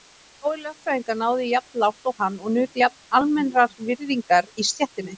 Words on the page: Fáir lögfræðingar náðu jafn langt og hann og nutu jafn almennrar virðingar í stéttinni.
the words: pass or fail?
pass